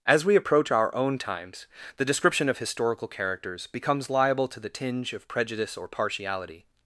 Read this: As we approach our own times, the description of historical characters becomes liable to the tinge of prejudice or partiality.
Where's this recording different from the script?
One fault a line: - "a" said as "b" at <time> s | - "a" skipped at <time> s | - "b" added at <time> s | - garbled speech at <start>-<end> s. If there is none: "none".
none